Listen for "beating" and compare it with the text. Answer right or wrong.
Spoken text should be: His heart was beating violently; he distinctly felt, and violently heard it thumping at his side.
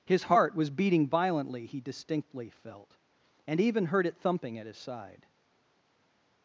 right